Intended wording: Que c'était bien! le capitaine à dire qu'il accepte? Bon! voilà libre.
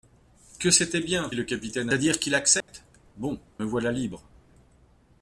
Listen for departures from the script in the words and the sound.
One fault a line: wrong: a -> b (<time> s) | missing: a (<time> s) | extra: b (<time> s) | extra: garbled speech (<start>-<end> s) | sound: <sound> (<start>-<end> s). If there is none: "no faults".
sound: dropout (2.6-2.7 s)